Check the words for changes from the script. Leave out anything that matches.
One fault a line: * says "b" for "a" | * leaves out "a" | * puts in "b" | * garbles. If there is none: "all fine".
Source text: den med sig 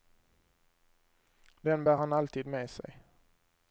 * puts in "bär han alltid"